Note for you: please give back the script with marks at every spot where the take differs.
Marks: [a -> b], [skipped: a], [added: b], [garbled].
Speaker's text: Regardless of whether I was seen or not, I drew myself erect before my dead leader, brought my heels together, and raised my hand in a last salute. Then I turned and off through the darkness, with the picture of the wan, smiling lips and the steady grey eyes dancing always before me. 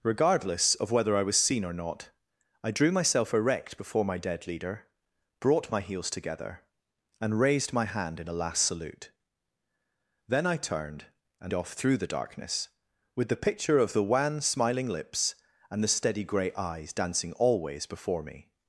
Regardless of whether I was seen or not, I drew myself erect before my dead leader, brought my heels together, and raised my hand in a last salute. Then I turned and off through the darkness, with the picture of the wan, smiling lips and the steady grey eyes dancing always before me.